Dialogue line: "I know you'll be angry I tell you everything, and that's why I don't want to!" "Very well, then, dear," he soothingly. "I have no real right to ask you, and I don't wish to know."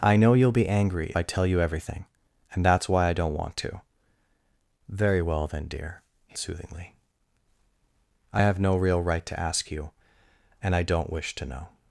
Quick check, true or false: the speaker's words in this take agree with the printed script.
true